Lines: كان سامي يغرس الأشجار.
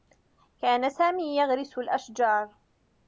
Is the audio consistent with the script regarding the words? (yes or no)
yes